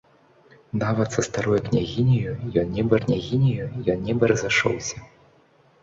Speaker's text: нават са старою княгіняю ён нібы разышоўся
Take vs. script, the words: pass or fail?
fail